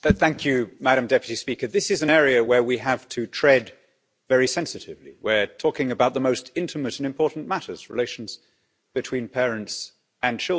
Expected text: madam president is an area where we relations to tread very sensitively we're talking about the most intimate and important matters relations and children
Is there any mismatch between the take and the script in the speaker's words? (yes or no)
yes